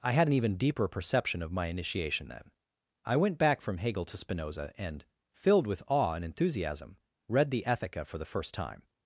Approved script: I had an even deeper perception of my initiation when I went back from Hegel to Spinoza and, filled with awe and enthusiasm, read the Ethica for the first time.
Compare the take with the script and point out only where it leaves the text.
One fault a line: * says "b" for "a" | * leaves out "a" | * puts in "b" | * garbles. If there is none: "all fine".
* says "then" for "when"